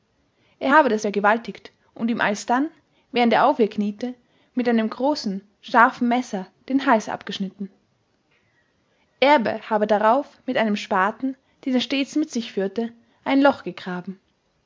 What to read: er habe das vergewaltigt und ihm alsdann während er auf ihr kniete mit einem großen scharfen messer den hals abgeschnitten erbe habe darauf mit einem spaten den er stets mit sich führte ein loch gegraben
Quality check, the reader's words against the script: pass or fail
pass